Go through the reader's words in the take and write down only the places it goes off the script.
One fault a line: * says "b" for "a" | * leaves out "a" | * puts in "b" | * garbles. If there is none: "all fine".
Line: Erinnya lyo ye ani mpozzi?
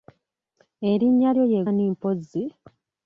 all fine